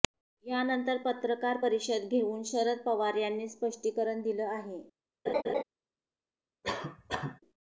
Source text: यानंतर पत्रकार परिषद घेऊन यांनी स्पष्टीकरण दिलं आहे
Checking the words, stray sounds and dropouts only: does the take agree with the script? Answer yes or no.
no